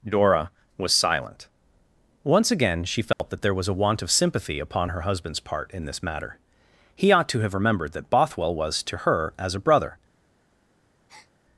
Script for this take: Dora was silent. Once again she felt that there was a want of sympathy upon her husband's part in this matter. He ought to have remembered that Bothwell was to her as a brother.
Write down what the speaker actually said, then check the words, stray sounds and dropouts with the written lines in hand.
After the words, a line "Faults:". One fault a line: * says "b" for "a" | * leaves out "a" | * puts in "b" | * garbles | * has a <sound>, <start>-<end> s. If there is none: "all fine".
Dora was silent. Once again she felt that there was a want of sympathy upon her husband's part in this matter. He ought to have remembered that Bothwell was to her as a brother.
Faults:
* has a dropout, 3.1-3.2 s
* has a breath, 11.1-11.3 s